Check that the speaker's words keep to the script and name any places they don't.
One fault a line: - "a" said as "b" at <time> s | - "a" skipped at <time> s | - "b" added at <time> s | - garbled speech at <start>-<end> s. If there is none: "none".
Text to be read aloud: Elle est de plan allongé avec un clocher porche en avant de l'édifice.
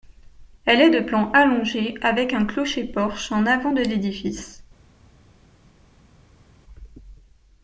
none